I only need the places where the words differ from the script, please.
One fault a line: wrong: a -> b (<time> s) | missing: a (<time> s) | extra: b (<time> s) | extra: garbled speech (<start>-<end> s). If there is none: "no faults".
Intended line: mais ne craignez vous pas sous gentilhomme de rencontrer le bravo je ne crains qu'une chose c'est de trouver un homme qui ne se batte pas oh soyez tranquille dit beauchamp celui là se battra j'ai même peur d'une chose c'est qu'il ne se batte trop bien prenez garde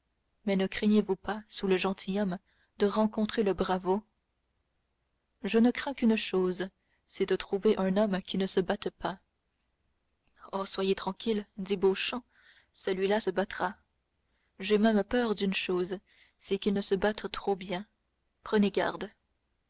extra: le (1.7 s)